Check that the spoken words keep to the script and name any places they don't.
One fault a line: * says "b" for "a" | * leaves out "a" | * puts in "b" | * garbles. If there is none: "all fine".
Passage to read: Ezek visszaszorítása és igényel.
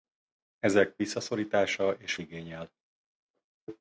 all fine